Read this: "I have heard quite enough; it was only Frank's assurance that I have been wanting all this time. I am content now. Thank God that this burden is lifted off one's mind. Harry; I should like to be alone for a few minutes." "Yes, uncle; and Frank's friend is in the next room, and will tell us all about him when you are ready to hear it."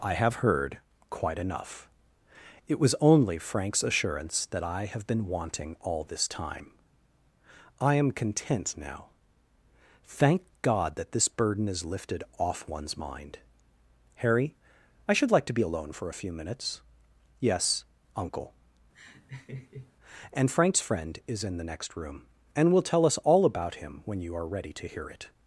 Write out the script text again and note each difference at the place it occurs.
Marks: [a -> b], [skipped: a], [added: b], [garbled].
"I have heard quite enough; it was only Frank's assurance that I have been wanting all this time. I am content now. Thank God that this burden is lifted off one's mind. Harry; I should like to be alone for a few minutes." "Yes, uncle; and Frank's friend is in the next room, and will tell us all about him when you are ready to hear it."